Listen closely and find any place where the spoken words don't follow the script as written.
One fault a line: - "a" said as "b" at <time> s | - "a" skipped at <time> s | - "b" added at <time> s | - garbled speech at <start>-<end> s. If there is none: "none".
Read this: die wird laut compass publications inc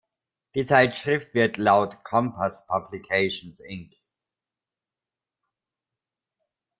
- "zeitschrift" added at 0.7 s